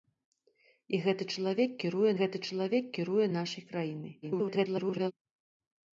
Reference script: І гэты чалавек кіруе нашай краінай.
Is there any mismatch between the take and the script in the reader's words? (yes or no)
yes